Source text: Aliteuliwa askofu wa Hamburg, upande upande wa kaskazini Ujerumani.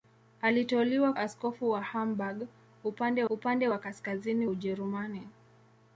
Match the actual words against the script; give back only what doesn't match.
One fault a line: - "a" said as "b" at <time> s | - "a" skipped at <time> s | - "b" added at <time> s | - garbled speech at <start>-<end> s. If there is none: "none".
none